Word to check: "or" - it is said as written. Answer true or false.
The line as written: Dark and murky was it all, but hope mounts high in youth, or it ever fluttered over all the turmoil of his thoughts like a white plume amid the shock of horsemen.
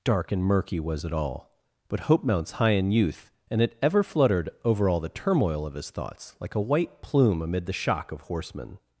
false